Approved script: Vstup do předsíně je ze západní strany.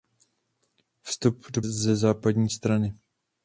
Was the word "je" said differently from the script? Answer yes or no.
yes